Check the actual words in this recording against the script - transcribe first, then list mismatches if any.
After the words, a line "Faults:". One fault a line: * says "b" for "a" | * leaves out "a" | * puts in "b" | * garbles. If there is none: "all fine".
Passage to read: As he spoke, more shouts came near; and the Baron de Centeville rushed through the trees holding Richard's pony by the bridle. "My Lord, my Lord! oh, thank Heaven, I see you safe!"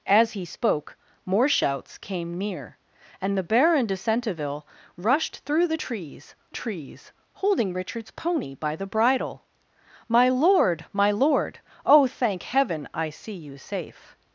As he spoke, more shouts came near; and the Baron de Centeville rushed through the trees trees holding Richard's pony by the bridle. "My Lord, my Lord! oh, thank Heaven, I see you safe!"
Faults:
* puts in "trees"